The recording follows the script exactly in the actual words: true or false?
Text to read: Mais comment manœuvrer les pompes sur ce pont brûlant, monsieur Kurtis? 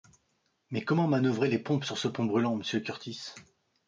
true